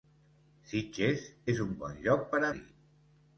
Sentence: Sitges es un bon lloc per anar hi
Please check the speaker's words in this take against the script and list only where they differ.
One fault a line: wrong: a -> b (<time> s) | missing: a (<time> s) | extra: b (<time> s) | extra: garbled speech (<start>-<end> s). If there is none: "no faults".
missing: anar (2.4 s)